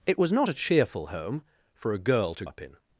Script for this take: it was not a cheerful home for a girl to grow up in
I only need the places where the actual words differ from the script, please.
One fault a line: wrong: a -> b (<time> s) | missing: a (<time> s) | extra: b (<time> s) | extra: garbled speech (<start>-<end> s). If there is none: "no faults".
missing: grow (2.4 s)